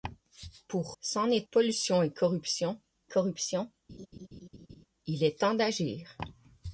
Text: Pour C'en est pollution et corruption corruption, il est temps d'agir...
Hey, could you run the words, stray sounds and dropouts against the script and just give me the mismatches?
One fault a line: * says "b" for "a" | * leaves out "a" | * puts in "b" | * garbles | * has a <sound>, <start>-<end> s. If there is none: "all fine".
* has a laugh, 3.9-4.9 s